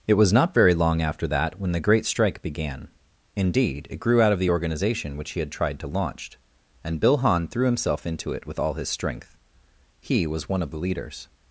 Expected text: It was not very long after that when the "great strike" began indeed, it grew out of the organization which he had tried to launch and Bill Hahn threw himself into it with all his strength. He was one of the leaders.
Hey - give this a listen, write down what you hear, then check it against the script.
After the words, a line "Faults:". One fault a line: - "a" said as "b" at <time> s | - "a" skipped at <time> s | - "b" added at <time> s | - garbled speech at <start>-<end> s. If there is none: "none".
It was not very long after that when the "great strike" began indeed, it grew out of the organization which he had tried to launch and Bill Hahn threw himself into it with all his strength. He was one of the leaders.
Faults:
none